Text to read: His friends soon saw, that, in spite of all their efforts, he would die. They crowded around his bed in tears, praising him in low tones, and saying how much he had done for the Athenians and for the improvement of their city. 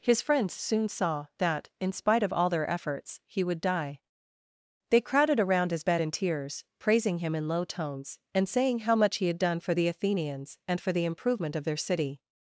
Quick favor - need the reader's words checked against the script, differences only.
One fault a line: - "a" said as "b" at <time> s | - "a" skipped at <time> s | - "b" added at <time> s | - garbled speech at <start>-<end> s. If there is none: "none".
none